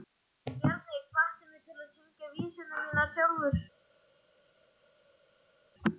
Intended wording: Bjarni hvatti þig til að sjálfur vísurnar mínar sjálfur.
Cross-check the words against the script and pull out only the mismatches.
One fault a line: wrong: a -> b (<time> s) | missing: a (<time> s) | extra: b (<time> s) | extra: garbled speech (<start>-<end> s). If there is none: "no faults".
wrong: þig -> mig (1.5 s)
wrong: sjálfur -> syngja (2.0 s)